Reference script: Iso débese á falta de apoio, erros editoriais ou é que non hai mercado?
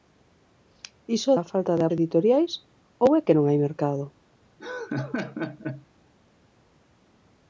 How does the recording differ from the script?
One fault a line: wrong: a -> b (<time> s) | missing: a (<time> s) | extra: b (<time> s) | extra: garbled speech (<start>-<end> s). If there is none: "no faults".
missing: débese (1.3 s)
missing: apoio erros (1.8 s)